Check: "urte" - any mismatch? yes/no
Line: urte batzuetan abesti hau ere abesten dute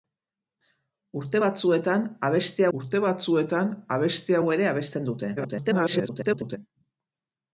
no